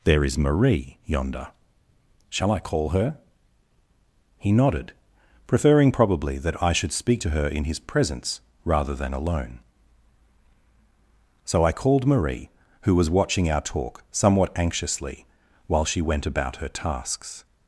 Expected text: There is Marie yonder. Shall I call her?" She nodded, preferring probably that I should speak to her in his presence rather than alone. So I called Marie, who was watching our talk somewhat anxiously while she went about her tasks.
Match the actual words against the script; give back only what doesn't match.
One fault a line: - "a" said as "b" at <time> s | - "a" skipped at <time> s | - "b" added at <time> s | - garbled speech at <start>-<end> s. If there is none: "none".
- "She" said as "He" at 4.4 s